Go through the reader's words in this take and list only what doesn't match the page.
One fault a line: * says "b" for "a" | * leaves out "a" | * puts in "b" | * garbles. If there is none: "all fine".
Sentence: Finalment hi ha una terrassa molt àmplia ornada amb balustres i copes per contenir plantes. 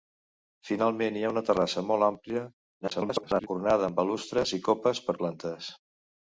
* garbles
* leaves out "contenir"